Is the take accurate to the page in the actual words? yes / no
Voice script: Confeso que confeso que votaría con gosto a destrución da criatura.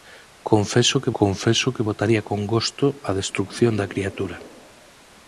yes